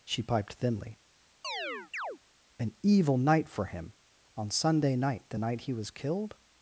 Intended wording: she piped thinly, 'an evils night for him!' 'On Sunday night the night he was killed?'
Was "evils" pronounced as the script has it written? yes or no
no